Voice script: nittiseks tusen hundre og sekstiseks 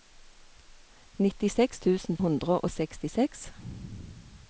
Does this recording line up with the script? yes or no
yes